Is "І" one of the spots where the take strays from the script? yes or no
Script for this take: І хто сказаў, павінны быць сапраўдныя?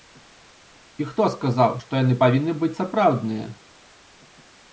no